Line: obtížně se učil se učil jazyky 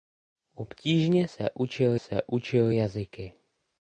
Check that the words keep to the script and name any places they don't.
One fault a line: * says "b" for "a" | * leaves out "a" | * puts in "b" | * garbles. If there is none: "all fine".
all fine